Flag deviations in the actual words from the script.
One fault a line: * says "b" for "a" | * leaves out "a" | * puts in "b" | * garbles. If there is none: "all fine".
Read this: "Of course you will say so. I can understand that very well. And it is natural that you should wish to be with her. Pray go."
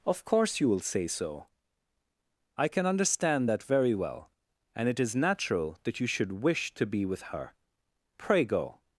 all fine